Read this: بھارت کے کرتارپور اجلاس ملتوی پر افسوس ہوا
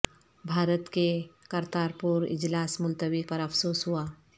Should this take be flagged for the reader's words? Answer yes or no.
no